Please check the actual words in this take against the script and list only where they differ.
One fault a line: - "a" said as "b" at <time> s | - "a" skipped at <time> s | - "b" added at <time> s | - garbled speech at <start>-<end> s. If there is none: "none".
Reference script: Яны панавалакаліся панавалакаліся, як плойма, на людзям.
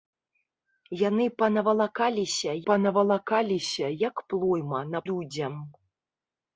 none